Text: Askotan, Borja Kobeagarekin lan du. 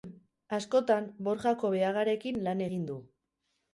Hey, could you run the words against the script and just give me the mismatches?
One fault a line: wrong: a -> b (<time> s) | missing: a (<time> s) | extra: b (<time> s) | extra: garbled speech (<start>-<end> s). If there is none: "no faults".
extra: egin (2.7 s)